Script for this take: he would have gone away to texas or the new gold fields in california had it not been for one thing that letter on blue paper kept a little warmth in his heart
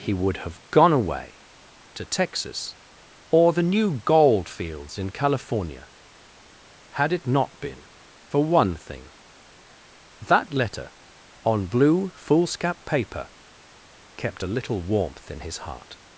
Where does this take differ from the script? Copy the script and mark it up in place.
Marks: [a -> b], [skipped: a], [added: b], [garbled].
he would have gone away to texas or the new gold fields in california had it not been for one thing that letter on blue [added: foolscap] paper kept a little warmth in his heart